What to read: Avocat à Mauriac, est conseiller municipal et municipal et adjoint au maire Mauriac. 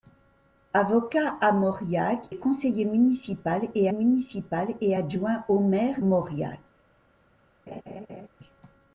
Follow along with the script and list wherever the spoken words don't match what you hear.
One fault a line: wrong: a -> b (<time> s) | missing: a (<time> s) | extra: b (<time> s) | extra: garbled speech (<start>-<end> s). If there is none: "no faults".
no faults